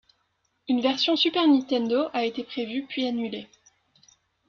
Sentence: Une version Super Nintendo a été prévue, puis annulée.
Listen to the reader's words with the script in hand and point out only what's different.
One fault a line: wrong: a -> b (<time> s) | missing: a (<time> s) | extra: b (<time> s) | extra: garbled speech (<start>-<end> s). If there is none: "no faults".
no faults